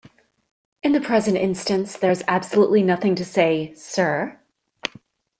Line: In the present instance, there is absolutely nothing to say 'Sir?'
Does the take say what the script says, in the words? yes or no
yes